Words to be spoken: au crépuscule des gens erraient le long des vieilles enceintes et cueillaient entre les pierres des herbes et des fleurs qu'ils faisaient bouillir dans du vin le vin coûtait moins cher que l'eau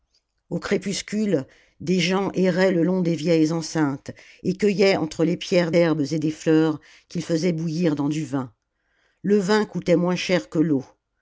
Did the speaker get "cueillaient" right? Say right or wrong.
right